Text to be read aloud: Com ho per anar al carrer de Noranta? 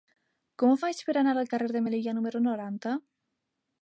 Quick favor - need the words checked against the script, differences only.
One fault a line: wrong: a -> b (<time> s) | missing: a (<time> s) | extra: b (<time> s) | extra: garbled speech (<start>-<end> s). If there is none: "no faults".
extra: faig (0.8 s)
extra: Melilla número (1.8 s)